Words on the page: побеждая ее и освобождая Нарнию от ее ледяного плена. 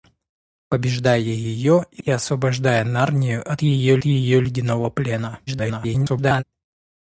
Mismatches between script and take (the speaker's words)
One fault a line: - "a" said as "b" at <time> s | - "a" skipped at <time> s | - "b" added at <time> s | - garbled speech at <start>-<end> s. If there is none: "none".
- "и" added at 2.0 s
- "ее" added at 4.0 s
- garbled speech at 5.5-6.4 s